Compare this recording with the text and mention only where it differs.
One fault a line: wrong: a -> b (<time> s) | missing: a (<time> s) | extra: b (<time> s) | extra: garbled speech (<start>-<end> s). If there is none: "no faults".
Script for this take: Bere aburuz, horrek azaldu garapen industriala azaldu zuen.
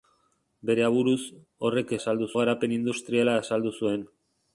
no faults